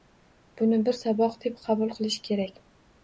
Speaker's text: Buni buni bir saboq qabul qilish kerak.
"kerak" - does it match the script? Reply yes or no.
yes